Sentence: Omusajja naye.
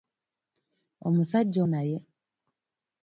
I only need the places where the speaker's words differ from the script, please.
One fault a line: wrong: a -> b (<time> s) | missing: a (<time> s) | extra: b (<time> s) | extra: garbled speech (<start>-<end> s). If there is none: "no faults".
no faults